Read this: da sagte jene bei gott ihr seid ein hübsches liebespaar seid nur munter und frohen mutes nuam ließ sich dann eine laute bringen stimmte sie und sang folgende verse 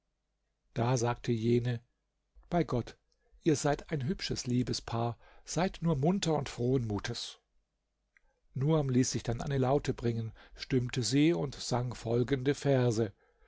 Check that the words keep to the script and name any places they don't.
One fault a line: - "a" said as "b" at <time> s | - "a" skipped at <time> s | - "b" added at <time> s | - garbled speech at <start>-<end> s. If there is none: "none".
none